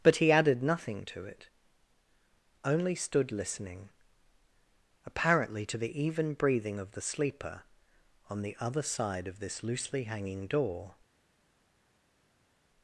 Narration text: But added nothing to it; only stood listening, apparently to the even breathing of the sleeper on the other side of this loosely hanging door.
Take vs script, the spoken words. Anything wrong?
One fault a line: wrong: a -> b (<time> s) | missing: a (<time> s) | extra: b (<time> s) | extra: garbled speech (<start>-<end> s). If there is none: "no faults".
extra: he (0.2 s)